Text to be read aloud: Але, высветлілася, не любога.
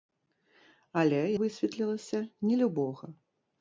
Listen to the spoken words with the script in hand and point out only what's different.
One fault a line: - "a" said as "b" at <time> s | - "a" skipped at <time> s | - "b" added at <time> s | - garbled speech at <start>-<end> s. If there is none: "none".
none